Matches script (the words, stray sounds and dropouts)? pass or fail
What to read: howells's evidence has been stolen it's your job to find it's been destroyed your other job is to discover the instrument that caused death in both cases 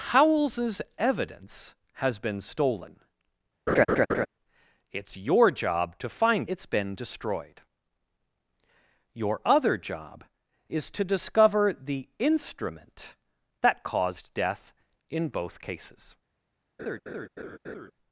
fail